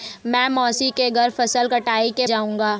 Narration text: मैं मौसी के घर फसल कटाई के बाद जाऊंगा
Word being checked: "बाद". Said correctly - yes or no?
no